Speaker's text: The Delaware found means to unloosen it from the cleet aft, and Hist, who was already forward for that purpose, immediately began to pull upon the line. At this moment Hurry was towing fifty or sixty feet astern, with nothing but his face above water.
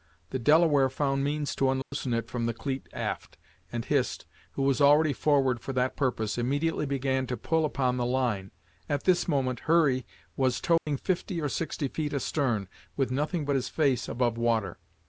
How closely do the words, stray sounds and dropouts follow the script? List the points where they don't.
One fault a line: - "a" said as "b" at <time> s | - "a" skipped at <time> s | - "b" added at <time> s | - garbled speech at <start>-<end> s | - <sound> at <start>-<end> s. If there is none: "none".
- dropout at 1.8-1.9 s
- dropout at 10.8-10.9 s